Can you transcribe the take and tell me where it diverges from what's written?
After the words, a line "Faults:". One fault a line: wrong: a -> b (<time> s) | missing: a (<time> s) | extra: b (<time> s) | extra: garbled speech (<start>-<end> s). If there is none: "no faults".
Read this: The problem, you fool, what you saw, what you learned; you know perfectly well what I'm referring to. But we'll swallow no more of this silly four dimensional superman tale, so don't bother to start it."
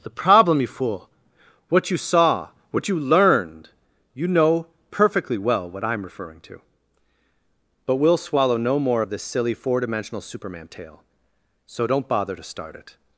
The problem, you fool, what you saw, what you learned; you know perfectly well what I'm referring to. But we'll swallow no more of this silly four dimensional superman tale, so don't bother to start it."
Faults:
no faults